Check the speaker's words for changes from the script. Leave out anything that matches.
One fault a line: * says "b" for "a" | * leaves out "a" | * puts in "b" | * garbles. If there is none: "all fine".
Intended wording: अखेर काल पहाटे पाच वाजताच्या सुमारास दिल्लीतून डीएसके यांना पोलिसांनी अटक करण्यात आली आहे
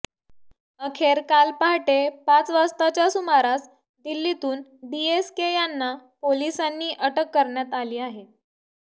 all fine